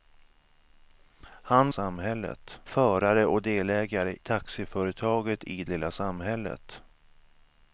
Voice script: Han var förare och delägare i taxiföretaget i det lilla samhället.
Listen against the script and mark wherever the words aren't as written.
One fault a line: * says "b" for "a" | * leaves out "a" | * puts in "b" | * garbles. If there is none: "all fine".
* says "samhället" for "var"
* leaves out "i"
* leaves out "det"